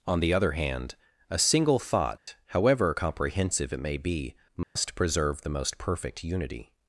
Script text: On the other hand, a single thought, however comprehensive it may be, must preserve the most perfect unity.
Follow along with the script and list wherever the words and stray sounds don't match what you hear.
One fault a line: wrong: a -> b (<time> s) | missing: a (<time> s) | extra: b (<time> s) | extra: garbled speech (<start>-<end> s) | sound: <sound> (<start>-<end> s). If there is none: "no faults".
sound: dropout (2.2-2.3 s)
sound: dropout (4.6-4.8 s)